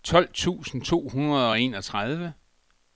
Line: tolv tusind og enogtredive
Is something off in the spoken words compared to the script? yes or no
yes